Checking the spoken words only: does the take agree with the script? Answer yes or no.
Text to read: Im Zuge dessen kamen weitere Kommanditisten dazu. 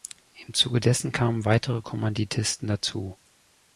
yes